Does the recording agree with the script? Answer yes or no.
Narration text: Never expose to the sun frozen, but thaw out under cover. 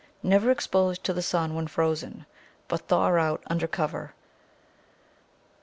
no